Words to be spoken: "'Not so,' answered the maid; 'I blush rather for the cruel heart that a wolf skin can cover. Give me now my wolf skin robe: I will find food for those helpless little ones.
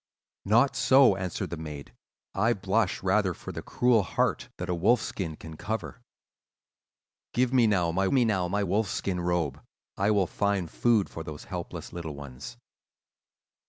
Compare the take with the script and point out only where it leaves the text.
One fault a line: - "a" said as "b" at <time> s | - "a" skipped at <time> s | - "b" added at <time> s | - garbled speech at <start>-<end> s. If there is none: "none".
- "me now my" added at 8.1 s